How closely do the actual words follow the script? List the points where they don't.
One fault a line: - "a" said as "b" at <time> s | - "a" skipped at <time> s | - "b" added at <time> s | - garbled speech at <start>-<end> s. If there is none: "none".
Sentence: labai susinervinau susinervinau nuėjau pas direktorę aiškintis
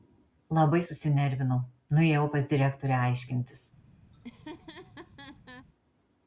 - "susinervinau" skipped at 1.6 s